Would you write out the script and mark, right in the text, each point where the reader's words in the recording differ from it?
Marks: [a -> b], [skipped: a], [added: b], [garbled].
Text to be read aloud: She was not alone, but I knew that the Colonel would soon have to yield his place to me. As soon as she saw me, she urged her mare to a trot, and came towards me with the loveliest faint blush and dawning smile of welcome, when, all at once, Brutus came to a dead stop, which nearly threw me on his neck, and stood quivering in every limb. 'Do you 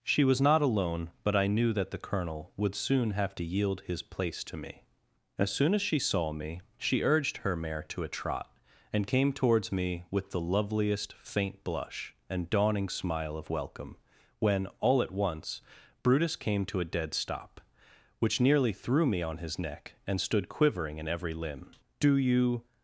She was not alone, but I knew that the Colonel would soon have to yield his place to me. As soon as she saw me, she urged her mare to a trot, and came towards me with the loveliest faint blush and dawning smile of welcome, when, all at once, Brutus came to a dead stop, which nearly threw me on his neck, and stood quivering in every limb. 'Do you